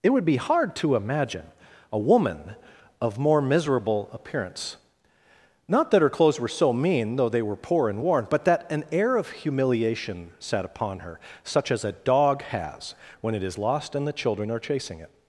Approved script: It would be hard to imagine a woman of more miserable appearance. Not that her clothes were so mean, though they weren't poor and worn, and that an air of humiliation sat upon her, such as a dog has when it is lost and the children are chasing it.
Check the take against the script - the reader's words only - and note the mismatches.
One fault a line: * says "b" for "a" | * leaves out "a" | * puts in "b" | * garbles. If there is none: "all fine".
* says "were" for "weren't"
* says "but" for "and"